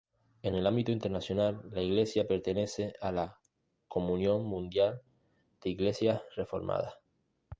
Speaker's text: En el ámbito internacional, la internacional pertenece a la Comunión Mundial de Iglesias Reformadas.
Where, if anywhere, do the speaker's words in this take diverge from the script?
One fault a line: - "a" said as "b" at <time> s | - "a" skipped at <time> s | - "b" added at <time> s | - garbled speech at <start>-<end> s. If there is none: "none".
- "internacional" said as "iglesia" at 1.8 s